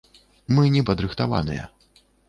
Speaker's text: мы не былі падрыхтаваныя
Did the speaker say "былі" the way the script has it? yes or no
no